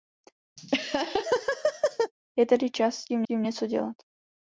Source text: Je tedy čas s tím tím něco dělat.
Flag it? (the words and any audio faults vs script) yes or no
yes